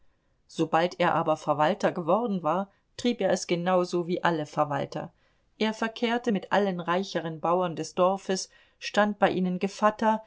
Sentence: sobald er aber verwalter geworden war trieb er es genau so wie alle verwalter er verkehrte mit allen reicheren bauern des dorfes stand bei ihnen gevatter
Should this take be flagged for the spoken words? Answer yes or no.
no